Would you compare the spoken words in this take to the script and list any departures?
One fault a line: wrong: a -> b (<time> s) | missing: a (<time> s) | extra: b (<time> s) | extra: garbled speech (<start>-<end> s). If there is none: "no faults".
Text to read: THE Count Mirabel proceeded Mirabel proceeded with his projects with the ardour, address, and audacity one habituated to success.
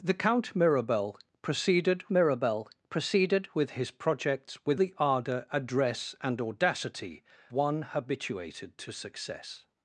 no faults